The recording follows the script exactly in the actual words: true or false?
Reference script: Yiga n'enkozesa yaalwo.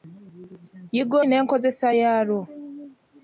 true